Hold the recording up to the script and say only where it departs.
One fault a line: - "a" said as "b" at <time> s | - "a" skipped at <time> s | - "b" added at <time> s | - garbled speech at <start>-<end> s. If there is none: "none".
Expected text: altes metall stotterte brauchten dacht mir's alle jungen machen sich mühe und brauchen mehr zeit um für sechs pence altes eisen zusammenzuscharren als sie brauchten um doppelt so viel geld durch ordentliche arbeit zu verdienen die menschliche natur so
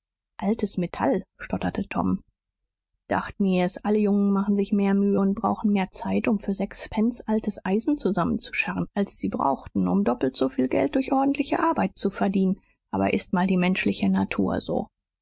- "brauchten" said as "tom" at 1.9 s
- "mehr" added at 4.7 s
- "aber ist mal" added at 12.9 s